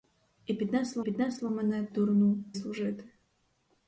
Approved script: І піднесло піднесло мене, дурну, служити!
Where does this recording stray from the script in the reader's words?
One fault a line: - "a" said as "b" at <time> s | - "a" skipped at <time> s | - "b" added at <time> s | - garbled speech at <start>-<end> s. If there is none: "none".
none